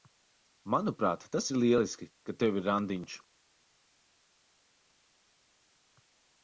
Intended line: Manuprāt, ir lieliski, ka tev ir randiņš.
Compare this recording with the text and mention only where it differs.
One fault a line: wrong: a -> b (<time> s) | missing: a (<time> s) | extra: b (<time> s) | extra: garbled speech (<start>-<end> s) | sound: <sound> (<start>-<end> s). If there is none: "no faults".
extra: tas (1.3 s)